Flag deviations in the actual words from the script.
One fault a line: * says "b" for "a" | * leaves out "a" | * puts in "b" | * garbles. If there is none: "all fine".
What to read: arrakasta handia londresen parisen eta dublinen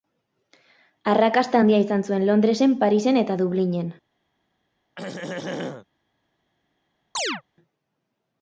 * puts in "izan zuen"